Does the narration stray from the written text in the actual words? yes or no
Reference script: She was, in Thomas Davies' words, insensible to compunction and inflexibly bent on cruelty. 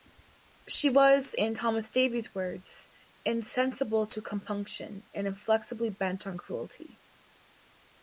no